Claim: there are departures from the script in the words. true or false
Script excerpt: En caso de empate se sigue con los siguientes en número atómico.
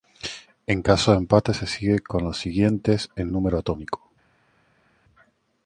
false